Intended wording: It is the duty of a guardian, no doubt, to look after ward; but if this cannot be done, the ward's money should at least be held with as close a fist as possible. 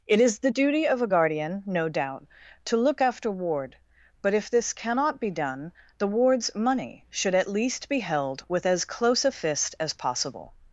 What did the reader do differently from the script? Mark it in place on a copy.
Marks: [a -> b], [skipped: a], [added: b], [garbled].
It is the duty of a guardian, no doubt, to look after ward; but if this cannot be done, the ward's money should at least be held with as close a fist as possible.